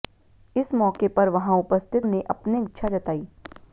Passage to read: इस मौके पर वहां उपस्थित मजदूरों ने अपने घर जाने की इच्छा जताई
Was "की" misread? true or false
true